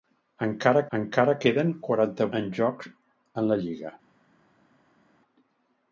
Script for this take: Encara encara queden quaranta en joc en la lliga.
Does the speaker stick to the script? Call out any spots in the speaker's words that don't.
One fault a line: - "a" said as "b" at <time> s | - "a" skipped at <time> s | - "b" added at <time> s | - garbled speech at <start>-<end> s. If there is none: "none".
none